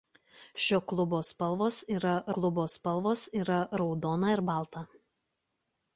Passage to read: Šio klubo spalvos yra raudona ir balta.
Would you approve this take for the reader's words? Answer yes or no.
no